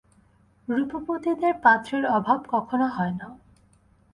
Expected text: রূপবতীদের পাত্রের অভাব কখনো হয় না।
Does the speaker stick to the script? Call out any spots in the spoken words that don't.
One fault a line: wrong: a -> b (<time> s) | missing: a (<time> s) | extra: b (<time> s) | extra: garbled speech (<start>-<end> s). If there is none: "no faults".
no faults